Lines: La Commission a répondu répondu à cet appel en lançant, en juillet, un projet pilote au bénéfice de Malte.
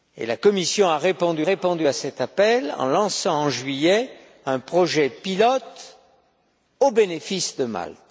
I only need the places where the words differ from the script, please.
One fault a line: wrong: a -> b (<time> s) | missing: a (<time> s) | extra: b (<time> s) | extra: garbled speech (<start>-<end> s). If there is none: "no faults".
no faults